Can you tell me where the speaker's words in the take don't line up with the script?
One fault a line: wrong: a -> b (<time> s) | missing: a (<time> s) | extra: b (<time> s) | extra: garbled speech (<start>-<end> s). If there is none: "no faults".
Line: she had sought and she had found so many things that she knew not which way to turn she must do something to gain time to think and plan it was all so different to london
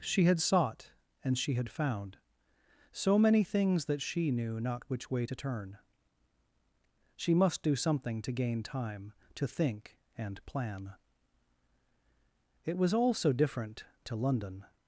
no faults